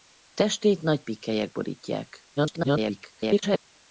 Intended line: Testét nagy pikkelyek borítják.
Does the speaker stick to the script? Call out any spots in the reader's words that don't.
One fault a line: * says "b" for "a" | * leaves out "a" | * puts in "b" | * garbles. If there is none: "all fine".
* garbles